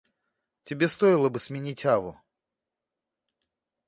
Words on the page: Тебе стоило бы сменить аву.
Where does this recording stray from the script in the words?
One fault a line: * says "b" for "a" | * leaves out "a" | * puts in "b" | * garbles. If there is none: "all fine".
all fine